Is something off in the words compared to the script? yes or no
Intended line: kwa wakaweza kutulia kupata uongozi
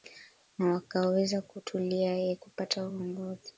yes